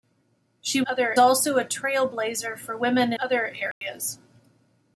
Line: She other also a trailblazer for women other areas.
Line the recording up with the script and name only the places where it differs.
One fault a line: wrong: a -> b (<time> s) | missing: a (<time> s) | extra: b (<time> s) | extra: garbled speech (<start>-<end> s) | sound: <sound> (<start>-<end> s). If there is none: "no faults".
sound: dropout (3.7-3.8 s)